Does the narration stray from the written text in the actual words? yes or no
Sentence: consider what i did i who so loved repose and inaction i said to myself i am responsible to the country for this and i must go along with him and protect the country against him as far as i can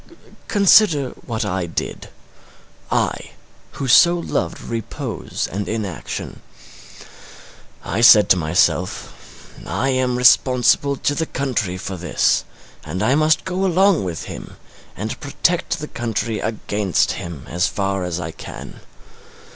no